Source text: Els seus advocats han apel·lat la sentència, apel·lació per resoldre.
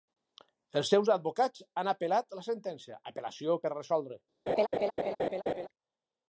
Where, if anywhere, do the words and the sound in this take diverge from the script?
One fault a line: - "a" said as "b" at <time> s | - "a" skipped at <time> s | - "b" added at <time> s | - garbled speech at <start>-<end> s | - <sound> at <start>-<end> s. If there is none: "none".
- laugh at 4.5-5.7 s